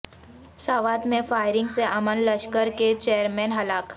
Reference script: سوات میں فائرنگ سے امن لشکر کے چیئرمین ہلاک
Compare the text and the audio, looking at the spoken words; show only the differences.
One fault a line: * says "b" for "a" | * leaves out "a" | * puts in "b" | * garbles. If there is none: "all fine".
all fine